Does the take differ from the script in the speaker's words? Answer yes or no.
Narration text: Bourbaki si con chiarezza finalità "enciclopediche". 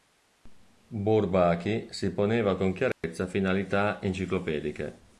yes